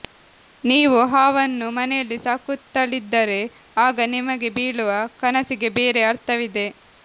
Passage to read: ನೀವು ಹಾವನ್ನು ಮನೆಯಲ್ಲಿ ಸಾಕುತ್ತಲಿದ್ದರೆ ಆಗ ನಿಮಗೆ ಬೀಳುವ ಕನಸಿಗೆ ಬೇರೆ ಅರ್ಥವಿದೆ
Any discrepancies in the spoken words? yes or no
no